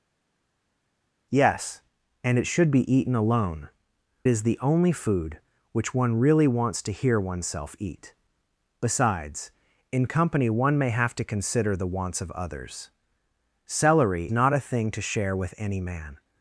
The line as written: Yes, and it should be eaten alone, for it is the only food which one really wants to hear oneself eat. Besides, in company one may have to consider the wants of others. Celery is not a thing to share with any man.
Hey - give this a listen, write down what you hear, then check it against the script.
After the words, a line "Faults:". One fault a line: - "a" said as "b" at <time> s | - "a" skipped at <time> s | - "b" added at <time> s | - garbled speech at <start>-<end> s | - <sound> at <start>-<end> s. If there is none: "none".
Yes, and it should be eaten alone, is the only food which one really wants to hear oneself eat. Besides, in company one may have to consider the wants of others. Celery not a thing to share with any man.
Faults:
- "for it" skipped at 3.7 s
- "is" skipped at 14.3 s